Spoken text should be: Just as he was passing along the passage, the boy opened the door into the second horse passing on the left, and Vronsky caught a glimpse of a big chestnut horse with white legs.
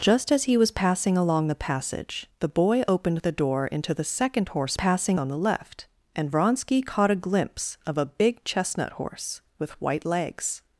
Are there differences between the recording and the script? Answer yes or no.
no